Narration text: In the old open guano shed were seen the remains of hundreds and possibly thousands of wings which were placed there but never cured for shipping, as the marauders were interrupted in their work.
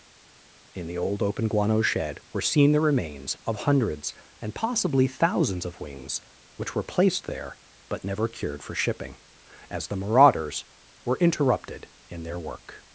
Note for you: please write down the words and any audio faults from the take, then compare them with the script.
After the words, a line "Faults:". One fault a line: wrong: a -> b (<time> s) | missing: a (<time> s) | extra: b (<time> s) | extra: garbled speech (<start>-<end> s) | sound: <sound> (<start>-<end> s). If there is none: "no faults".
In the old open guano shed were seen the remains of hundreds and possibly thousands of wings which were placed there but never cured for shipping, as the marauders were interrupted in their work.
Faults:
no faults